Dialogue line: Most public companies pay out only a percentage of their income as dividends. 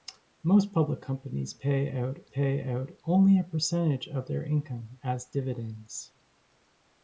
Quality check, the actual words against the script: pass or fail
fail